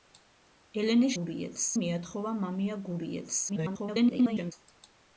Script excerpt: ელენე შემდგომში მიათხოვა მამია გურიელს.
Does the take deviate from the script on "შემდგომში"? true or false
true